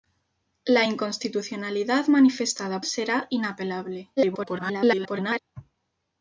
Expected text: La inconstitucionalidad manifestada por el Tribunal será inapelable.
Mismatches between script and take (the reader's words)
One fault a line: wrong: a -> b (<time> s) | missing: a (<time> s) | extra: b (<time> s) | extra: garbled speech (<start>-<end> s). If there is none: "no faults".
missing: por el Tribunal (2.8 s)
extra: garbled speech (4.2-5.4 s)